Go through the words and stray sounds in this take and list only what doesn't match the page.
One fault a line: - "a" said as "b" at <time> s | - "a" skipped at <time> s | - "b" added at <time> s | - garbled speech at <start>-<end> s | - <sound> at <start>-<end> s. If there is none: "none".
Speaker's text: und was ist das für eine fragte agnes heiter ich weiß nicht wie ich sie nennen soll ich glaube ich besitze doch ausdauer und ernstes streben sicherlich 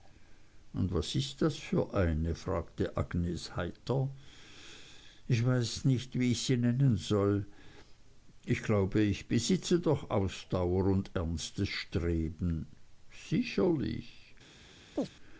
- chirp at 15.0-15.1 s